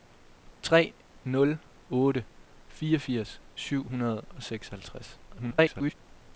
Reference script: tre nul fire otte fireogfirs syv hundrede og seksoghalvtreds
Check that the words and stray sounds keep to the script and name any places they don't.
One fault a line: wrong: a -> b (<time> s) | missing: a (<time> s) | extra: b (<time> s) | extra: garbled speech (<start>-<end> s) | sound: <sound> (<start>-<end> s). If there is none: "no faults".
missing: fire (1.6 s)
extra: garbled speech (5.3-5.9 s)